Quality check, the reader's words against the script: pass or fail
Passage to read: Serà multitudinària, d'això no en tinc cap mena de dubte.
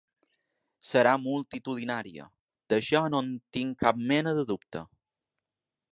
pass